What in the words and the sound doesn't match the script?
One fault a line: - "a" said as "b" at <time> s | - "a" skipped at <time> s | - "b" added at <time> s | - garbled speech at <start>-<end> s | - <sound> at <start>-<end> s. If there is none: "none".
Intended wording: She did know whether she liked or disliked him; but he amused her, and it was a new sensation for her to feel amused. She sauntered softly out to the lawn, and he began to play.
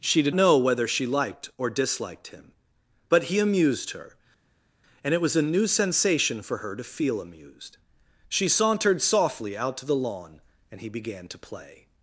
none